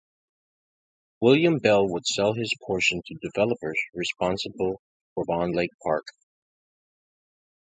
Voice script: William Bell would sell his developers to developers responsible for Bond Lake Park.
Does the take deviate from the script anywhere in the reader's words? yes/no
yes